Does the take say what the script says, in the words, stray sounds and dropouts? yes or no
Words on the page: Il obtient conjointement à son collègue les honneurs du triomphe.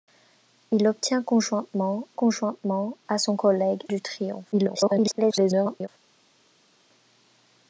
no